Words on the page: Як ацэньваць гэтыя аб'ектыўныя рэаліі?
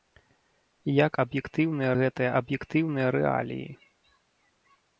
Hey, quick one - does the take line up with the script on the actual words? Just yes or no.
no